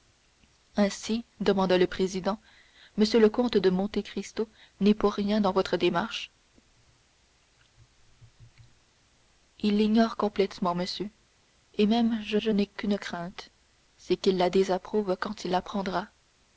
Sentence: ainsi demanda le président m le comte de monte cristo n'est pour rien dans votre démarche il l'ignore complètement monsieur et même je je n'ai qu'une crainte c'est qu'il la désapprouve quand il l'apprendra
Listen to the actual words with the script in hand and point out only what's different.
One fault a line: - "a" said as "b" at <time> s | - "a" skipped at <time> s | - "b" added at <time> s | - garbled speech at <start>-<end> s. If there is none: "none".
none